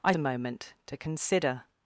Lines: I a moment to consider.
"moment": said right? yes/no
yes